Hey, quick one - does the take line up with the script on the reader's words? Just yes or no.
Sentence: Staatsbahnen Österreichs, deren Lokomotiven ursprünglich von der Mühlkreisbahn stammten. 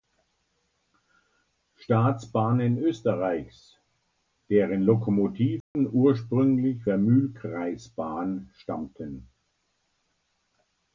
no